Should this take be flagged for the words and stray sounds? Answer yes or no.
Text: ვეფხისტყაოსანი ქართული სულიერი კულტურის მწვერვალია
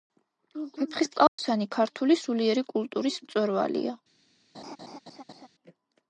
yes